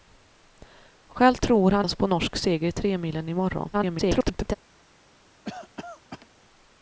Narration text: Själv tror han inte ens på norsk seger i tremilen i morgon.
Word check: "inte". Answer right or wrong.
wrong